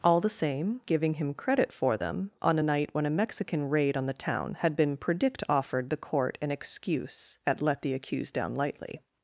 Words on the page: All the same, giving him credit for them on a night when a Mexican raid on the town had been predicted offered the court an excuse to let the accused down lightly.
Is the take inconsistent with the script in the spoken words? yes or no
yes